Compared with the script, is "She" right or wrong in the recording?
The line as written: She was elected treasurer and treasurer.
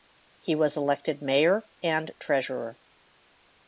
wrong